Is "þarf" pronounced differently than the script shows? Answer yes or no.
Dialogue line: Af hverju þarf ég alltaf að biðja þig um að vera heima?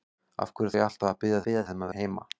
yes